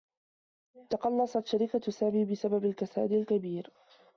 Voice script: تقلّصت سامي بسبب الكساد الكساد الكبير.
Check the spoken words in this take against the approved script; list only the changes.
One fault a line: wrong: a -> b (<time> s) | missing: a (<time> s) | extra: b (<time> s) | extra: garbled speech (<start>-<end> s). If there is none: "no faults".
extra: شركة (1.4 s)
missing: الكساد (3.1 s)